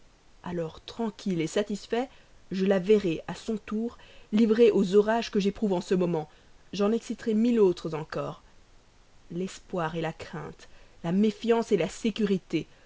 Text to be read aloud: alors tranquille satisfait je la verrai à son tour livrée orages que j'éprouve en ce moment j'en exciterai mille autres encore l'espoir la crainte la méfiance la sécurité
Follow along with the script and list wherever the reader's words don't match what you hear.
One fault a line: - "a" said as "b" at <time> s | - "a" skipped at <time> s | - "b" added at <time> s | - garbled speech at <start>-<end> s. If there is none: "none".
- "aux" added at 4.7 s